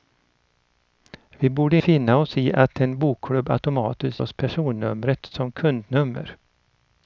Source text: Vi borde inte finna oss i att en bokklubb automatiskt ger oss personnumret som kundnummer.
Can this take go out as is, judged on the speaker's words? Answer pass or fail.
fail